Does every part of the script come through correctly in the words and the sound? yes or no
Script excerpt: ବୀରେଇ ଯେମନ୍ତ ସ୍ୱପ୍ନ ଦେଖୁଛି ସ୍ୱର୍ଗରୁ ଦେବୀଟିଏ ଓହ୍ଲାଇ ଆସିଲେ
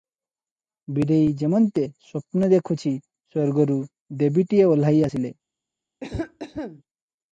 no